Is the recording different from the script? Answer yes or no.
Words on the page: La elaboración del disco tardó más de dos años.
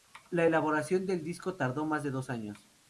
no